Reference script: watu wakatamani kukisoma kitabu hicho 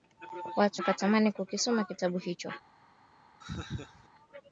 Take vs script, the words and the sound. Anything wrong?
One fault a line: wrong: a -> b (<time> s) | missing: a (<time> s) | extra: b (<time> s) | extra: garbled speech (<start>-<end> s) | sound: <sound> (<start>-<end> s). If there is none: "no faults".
sound: laugh (3.4-4.1 s)